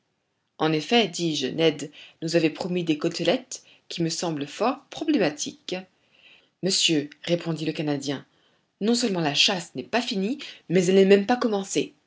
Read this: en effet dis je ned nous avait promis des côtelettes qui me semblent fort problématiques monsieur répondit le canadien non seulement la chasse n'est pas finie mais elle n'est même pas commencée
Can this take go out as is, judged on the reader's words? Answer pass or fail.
pass